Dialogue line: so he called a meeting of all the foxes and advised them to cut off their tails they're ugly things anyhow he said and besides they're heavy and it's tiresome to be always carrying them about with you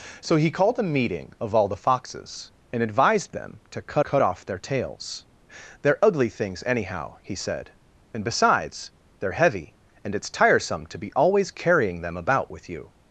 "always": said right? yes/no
yes